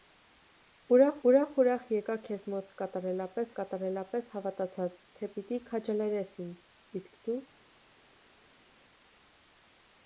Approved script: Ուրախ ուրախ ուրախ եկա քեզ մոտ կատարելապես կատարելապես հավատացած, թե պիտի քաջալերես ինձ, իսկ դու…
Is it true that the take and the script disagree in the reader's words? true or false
false